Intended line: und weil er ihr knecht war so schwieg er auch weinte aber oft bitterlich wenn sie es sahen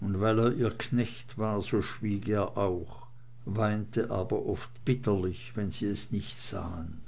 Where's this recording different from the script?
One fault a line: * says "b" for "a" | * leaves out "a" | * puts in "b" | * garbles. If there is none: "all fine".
* puts in "nicht"